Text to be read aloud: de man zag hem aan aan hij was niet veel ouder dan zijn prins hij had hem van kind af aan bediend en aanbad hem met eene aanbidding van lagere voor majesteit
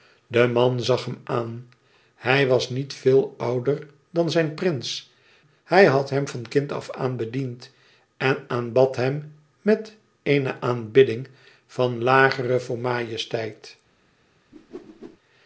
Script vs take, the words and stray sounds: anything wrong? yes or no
yes